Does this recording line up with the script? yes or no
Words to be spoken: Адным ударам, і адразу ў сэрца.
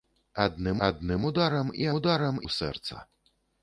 no